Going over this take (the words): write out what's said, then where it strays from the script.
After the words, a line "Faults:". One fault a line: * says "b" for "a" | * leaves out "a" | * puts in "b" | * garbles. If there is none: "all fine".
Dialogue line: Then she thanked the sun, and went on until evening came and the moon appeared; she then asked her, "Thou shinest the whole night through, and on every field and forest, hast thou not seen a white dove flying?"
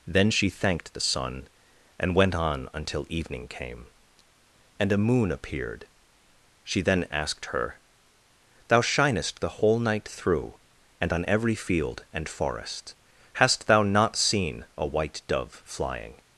Then she thanked the sun, and went on until evening came and a moon appeared; she then asked her, "Thou shinest the whole night through, and on every field and forest, hast thou not seen a white dove flying?"
Faults:
* says "a" for "the"